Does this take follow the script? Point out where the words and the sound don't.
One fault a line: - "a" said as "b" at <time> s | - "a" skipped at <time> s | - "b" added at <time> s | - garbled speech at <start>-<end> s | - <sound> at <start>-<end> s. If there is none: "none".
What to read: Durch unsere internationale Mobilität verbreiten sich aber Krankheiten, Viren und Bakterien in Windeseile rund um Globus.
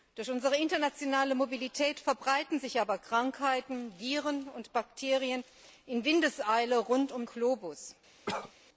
- cough at 8.3-8.5 s